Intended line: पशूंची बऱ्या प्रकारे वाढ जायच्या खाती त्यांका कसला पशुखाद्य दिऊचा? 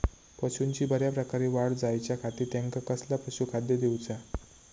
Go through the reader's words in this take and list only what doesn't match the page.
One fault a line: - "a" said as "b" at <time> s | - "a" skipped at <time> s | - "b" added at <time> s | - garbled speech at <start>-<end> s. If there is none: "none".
none